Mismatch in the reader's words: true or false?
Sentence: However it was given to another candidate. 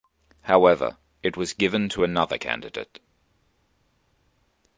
false